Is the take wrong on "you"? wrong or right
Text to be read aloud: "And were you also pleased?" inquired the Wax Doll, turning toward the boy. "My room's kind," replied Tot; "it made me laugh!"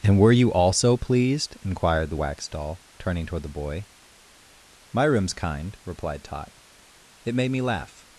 right